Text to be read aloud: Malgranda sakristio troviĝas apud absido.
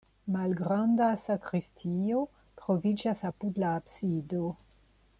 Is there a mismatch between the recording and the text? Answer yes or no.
yes